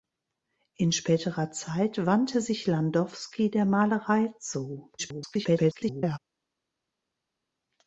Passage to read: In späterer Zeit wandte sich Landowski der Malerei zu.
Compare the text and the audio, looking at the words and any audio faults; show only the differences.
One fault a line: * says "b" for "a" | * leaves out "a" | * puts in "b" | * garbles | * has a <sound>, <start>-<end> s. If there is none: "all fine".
* garbles